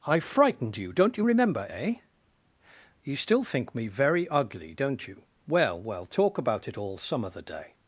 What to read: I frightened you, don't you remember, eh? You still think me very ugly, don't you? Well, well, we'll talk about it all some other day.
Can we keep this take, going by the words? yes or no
no